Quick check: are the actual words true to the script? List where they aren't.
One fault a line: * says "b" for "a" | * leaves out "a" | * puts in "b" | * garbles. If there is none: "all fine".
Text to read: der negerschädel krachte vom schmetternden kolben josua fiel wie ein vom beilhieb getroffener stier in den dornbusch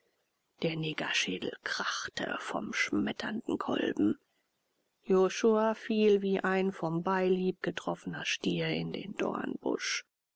all fine